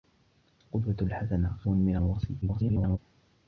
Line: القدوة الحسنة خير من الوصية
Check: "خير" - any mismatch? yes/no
yes